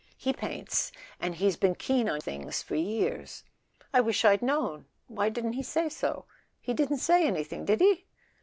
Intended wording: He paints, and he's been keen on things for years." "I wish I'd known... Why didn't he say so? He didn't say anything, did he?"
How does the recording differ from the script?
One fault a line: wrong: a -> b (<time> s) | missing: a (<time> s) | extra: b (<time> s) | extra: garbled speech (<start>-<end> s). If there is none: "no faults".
no faults